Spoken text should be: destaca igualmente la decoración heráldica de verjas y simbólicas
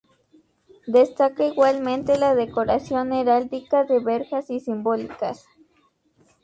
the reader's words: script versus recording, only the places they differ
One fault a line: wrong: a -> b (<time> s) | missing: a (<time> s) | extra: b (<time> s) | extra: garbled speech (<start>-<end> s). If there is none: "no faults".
no faults